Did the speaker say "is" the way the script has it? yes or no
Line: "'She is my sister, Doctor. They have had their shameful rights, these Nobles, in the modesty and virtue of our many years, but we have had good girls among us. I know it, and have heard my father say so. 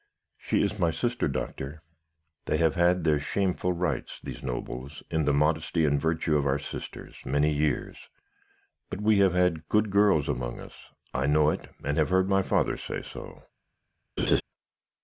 yes